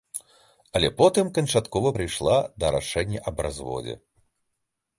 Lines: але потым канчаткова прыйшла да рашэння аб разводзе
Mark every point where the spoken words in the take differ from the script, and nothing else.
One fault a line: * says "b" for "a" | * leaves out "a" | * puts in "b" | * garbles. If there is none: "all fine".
all fine